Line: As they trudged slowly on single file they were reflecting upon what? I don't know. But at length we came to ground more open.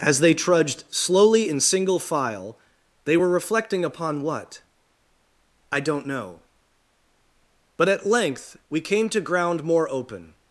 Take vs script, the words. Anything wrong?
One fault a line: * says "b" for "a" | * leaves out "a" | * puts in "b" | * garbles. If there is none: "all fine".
* says "in" for "on"